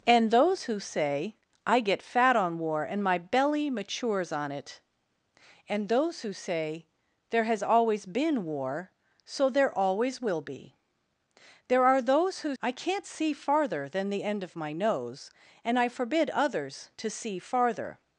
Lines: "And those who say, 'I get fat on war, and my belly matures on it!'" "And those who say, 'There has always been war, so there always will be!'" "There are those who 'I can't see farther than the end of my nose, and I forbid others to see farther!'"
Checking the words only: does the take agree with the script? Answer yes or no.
yes